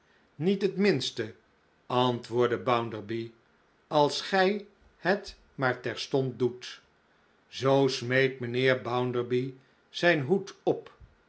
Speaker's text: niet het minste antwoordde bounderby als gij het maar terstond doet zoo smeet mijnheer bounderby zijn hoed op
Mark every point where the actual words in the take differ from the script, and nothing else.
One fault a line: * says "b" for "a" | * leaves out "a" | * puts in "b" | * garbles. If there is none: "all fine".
all fine